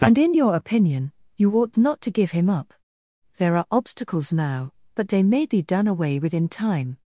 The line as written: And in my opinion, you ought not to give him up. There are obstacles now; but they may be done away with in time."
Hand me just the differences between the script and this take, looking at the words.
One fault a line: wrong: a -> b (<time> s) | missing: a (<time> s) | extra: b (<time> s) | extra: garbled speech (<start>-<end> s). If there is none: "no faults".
wrong: my -> your (0.3 s)